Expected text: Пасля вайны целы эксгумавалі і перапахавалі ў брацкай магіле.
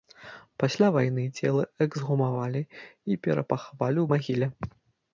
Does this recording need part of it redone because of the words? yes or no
yes